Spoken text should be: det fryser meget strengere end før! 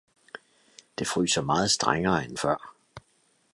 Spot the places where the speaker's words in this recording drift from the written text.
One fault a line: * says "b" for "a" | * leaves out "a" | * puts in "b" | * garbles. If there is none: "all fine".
all fine